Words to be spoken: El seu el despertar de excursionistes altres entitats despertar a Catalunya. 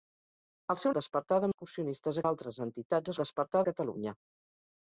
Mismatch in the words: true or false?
false